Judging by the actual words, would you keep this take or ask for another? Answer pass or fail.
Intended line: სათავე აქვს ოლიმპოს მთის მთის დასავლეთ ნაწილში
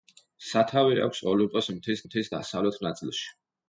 pass